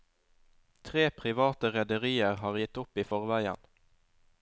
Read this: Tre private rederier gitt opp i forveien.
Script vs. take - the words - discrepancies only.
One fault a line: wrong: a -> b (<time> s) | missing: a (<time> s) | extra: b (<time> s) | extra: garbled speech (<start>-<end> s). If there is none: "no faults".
extra: har (2.4 s)